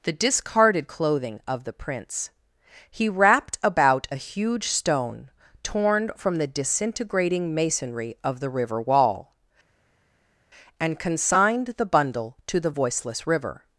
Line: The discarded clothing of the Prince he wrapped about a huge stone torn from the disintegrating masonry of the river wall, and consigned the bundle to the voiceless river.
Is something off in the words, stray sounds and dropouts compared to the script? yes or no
no